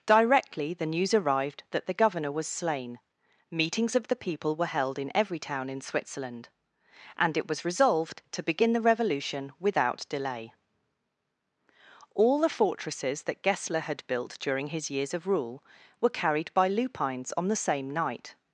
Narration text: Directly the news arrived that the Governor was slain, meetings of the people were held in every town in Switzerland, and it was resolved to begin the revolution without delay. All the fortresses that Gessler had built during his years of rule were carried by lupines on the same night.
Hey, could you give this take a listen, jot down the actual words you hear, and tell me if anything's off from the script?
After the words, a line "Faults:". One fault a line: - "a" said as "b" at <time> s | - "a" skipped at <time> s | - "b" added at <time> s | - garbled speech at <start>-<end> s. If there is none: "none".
Directly the news arrived that the Governor was slain, meetings of the people were held in every town in Switzerland, and it was resolved to begin the revolution without delay. All the fortresses that Gessler had built during his years of rule were carried by lupines on the same night.
Faults:
none